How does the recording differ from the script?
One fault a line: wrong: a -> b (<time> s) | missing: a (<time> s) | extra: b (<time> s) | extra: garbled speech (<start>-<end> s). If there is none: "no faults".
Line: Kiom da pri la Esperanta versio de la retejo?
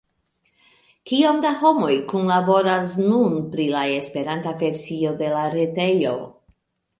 extra: homoj kunlaboras nun (1.6 s)